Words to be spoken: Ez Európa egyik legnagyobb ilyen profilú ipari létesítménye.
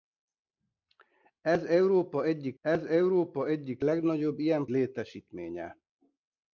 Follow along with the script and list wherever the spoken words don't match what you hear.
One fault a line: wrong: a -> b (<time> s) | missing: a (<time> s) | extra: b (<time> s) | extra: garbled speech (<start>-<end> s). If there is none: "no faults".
extra: ez Európa egyik (2.6 s)
missing: profilú ipari (4.7 s)